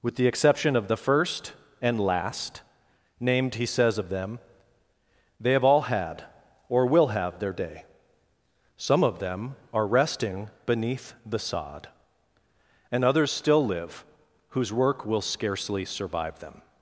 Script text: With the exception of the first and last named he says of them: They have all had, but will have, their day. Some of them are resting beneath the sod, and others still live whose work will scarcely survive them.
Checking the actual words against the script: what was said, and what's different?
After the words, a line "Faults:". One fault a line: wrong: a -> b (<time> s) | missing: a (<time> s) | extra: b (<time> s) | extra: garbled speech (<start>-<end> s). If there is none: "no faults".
With the exception of the first and last named he says of them: They have all had, or will have, their day. Some of them are resting beneath the sod, and others still live whose work will scarcely survive them.
Faults:
wrong: but -> or (6.7 s)